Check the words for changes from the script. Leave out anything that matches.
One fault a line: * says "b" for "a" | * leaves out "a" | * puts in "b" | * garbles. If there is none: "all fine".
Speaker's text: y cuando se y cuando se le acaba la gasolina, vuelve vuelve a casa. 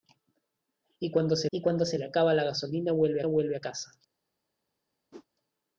all fine